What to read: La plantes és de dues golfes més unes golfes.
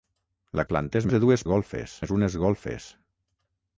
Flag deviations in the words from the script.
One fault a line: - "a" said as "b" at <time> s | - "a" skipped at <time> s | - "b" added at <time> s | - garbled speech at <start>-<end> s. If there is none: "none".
none